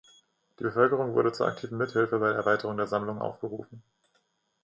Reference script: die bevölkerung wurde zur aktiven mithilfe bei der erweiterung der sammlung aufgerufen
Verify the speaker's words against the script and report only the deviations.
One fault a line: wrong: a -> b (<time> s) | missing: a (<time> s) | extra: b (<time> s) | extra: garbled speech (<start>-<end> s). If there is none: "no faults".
no faults